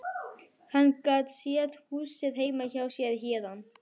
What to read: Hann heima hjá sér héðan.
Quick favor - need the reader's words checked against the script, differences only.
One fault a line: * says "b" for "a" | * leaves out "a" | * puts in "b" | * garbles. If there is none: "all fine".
* puts in "gat séð húsið"